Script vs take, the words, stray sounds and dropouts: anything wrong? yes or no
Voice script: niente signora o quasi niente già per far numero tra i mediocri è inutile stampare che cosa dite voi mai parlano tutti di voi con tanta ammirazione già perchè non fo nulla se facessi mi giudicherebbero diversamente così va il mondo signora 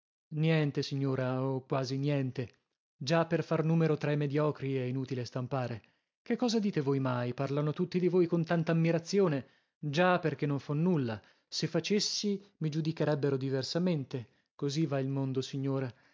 no